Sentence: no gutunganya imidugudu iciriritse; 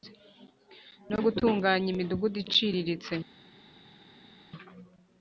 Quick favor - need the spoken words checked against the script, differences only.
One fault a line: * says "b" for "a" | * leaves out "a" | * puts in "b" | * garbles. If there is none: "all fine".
all fine